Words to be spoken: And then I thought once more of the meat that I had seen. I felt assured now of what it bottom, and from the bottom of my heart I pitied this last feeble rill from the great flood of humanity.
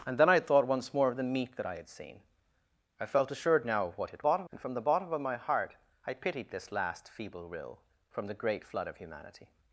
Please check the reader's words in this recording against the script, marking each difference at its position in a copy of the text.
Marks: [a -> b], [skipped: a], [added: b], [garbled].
And then I thought once more of the meat that I had seen. I felt assured now of what it bottom, and from the bottom of my heart I pitied this last feeble rill from the great flood of humanity.